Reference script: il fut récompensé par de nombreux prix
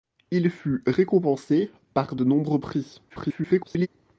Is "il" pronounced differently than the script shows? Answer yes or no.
no